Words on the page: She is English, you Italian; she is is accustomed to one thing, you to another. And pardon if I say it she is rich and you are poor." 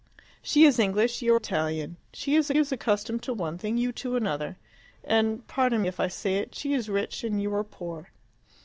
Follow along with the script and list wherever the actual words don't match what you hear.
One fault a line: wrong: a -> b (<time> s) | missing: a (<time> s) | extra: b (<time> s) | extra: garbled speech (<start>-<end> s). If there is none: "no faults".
no faults